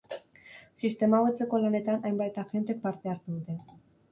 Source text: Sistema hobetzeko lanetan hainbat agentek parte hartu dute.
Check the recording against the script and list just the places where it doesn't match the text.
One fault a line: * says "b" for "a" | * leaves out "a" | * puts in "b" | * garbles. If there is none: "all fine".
all fine